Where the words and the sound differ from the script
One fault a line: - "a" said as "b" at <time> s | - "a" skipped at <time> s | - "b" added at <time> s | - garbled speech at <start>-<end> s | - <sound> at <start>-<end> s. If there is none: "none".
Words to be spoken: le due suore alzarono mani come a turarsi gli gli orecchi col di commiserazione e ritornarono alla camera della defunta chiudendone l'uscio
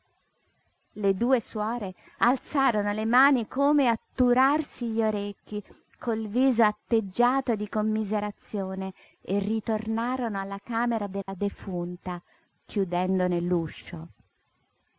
- "le" added at 2.9 s
- "gli" skipped at 5.0 s
- "viso atteggiato" added at 6.3 s
- dropout at 11.2-11.3 s